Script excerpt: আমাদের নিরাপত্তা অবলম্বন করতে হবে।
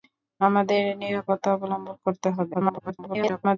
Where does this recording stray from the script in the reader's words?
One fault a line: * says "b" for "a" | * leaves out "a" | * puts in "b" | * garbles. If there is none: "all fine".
* garbles